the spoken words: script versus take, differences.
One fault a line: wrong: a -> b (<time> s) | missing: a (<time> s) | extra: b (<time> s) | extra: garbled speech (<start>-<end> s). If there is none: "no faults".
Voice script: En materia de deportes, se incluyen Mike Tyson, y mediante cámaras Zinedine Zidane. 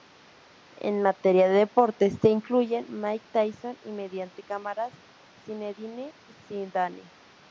no faults